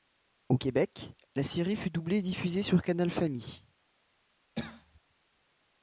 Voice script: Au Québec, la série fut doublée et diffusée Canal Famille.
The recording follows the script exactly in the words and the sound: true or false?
false